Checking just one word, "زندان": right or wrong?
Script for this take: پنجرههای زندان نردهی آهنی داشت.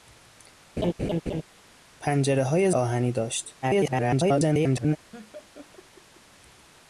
wrong